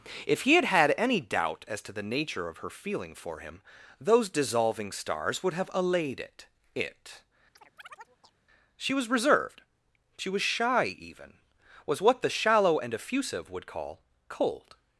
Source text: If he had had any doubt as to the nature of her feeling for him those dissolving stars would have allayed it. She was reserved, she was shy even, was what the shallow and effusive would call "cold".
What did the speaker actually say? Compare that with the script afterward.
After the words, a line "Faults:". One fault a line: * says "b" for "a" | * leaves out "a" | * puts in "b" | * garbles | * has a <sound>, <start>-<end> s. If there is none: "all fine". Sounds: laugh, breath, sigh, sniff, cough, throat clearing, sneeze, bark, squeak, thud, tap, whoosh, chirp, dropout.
If he had had any doubt as to the nature of her feeling for him those dissolving stars would have allayed it it. She was reserved, she was shy even, was what the shallow and effusive would call "cold".
Faults:
* puts in "it"
* has a chirp, 7.6-8.4 s